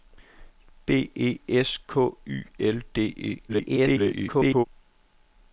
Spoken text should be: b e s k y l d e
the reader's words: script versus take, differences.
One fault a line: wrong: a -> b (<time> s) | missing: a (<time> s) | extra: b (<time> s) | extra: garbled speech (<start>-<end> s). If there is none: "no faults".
extra: garbled speech (3.5-4.7 s)